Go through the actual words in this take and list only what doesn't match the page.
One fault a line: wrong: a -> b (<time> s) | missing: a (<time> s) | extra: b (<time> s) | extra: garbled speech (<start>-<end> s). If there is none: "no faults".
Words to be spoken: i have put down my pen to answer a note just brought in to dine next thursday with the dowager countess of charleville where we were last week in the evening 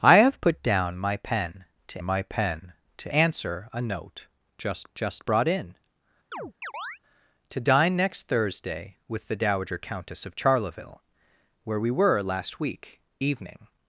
extra: my pen to (2.0 s)
extra: just (4.9 s)
missing: in the (13.0 s)